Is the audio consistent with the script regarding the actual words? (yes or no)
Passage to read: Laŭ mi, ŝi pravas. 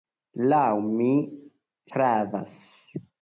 no